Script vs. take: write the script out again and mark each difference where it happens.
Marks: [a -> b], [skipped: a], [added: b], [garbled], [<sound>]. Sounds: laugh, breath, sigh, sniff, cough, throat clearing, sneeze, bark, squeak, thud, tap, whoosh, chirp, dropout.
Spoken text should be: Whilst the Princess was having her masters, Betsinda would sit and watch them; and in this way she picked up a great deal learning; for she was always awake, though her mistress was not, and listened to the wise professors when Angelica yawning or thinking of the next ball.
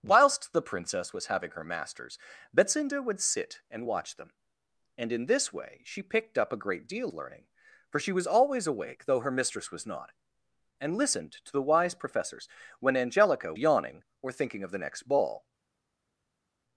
Whilst the Princess was having her masters, Betsinda would sit and watch them; and in this way she picked up a great deal learning; for she was always awake, though her mistress was not, and listened to the wise professors when Angelica yawning or thinking of the next ball.